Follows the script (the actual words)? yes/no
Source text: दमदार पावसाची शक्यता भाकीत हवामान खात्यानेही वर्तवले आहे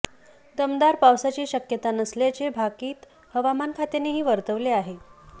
no